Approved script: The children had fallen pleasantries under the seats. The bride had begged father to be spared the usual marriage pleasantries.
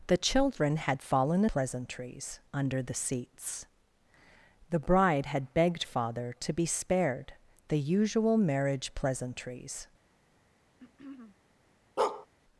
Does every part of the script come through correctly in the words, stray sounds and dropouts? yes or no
no